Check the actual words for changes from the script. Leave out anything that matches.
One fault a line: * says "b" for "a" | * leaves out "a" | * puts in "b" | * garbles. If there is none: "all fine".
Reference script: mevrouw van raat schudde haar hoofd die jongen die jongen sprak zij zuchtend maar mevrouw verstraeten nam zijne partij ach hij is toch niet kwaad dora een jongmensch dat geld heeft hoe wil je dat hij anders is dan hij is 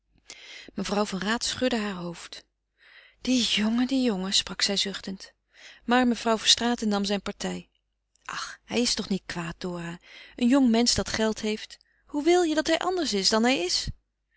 all fine